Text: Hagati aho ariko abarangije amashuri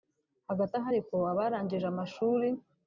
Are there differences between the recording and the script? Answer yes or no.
no